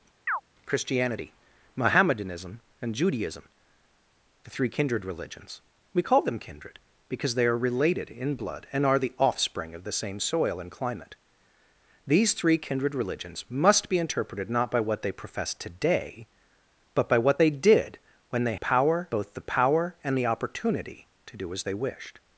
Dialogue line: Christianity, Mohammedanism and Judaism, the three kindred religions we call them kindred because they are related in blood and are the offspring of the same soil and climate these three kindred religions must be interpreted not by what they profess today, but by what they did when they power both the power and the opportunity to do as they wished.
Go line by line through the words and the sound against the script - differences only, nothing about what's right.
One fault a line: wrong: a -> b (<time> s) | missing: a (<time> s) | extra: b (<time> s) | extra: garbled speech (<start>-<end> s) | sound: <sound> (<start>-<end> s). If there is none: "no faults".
sound: chirp (0.3-0.4 s)